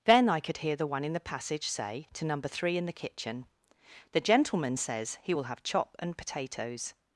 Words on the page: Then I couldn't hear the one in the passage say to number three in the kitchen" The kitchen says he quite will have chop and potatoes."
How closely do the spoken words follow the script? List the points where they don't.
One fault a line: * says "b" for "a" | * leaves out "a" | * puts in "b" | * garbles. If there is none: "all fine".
* says "could" for "couldn't"
* says "gentleman" for "kitchen"
* leaves out "quite"